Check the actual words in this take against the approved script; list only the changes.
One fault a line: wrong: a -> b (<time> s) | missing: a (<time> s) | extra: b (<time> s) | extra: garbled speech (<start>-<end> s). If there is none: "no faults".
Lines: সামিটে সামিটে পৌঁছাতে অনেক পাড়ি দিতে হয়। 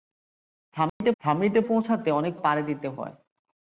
no faults